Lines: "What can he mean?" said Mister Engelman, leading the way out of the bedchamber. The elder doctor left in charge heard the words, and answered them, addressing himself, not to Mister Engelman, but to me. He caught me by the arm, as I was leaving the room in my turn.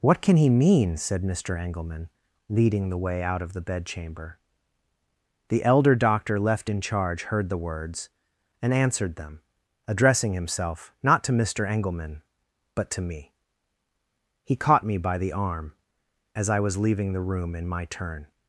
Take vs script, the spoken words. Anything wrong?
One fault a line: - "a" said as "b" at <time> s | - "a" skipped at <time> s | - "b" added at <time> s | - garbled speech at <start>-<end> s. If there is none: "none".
none